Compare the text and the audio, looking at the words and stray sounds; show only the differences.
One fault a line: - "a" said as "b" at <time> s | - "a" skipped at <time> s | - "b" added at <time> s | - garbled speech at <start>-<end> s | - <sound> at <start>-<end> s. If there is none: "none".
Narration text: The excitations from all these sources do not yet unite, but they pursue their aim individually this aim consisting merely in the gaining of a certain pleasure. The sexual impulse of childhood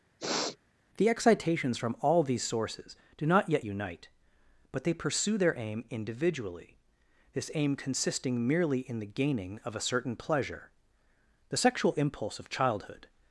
- sniff at 0.2-0.6 s